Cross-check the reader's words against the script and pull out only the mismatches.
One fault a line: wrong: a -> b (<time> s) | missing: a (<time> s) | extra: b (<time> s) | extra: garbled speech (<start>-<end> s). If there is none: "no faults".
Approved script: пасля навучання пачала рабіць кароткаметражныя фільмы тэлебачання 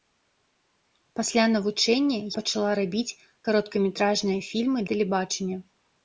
no faults